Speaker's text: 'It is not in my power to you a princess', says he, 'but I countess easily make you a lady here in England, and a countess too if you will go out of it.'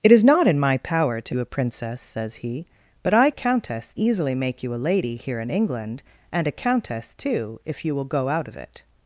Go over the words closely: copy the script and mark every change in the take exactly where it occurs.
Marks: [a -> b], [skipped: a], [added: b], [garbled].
'It is not in my power to you a princess', says he, 'but I countess easily make you a lady here in England, and a countess too if you will go out of it.'